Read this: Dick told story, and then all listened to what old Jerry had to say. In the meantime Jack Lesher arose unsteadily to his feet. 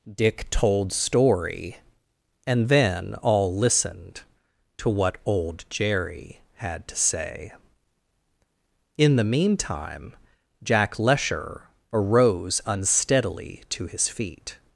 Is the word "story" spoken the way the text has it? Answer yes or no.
yes